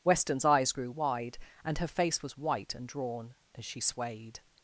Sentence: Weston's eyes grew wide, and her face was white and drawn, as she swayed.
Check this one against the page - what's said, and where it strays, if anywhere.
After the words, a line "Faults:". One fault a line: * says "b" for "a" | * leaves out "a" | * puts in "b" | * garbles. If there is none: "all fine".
Weston's eyes grew wide, and her face was white and drawn, as she swayed.
Faults:
all fine